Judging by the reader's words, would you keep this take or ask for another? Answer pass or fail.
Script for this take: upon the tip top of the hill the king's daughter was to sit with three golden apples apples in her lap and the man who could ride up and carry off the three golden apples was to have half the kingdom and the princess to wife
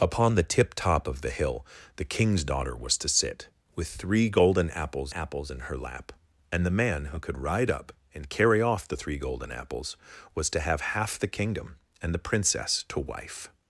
pass